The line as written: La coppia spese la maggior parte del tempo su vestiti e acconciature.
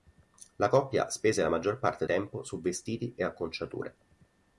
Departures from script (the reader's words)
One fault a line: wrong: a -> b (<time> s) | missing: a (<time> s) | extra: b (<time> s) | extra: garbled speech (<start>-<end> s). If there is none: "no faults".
missing: del (2.1 s)